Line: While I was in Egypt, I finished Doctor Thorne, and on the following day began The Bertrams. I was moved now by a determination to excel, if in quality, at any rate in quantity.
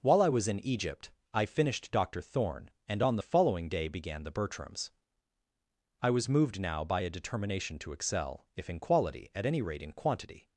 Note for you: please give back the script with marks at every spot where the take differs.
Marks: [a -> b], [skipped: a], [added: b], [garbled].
While I was in Egypt, I finished Doctor Thorne, and on the following day began The Bertrams. I was moved now by a determination to excel, if in quality, at any rate in quantity.